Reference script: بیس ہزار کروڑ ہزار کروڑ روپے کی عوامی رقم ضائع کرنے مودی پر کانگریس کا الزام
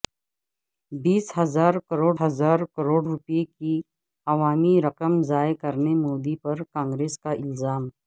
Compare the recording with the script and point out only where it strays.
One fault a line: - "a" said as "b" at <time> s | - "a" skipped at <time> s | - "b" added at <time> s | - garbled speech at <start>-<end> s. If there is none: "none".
none